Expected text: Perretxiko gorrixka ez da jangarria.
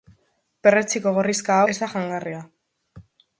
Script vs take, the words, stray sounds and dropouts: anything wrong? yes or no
no